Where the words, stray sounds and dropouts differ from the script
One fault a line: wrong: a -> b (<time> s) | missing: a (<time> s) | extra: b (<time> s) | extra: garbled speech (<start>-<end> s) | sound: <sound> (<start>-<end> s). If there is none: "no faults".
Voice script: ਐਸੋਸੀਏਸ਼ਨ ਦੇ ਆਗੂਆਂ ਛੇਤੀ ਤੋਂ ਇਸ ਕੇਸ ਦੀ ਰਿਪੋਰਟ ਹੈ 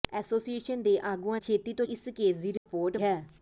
sound: dropout (2.6-2.7 s)